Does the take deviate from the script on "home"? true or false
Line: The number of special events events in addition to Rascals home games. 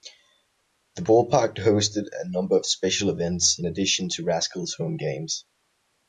false